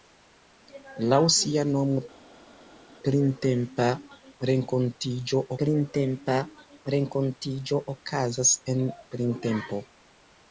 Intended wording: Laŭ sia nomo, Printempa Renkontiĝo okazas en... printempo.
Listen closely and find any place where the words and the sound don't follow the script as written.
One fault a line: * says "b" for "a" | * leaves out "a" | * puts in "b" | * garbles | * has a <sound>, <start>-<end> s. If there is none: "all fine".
* puts in "Printempa Renkontiĝo"